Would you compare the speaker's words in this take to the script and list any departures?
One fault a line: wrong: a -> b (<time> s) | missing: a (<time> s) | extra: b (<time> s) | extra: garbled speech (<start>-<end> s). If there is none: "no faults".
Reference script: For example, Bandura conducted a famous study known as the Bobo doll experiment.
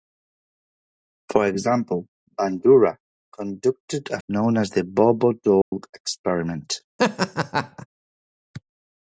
missing: famous study (4.2 s)